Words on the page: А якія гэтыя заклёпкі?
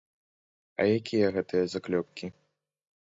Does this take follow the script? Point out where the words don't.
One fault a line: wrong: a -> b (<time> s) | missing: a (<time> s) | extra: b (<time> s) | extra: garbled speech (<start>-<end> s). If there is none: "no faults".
no faults